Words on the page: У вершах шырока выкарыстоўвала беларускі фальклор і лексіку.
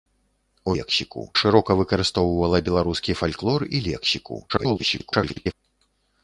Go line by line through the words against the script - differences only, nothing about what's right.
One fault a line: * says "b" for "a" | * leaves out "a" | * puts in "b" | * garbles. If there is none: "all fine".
* says "лексіку" for "вершах"
* garbles